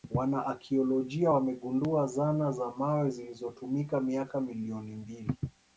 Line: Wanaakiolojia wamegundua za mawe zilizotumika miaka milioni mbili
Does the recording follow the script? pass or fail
fail